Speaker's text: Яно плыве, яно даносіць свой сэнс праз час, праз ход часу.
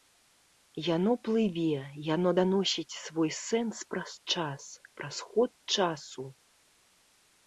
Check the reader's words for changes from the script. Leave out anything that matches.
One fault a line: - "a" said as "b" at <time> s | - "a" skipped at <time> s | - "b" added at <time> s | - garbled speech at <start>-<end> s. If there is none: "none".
none